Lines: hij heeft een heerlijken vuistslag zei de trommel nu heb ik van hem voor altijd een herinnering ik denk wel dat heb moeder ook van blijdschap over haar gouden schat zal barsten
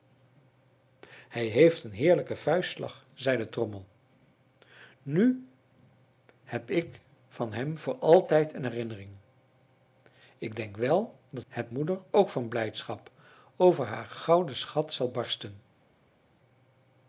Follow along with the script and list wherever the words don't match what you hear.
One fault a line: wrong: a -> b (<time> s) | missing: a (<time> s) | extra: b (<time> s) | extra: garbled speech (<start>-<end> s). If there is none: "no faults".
no faults